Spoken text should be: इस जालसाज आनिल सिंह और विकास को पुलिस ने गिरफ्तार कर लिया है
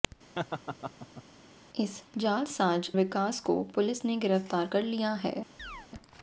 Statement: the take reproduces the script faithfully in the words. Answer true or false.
false